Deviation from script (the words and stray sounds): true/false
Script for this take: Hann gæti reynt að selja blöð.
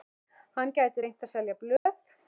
true